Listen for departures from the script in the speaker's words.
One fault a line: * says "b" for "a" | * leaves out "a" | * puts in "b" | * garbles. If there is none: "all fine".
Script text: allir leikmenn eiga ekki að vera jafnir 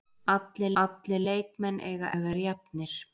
* puts in "allir"
* leaves out "ekki"